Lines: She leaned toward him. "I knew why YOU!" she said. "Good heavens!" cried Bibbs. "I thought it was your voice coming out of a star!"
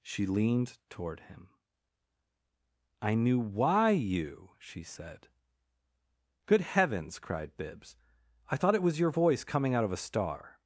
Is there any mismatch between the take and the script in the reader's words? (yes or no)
no